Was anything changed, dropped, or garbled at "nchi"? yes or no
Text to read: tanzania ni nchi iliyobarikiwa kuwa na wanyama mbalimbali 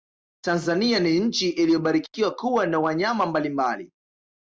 no